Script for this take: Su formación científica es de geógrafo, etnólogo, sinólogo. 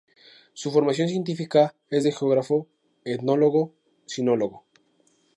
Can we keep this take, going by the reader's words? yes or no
yes